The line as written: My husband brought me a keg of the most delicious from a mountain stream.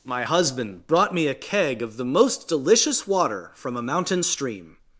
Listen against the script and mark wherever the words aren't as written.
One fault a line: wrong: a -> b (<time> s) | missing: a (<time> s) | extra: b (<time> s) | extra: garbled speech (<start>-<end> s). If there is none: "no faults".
extra: water (3.1 s)